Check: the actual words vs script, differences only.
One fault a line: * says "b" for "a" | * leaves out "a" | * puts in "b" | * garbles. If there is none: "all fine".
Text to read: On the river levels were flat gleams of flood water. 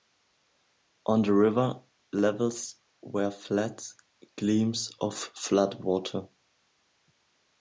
all fine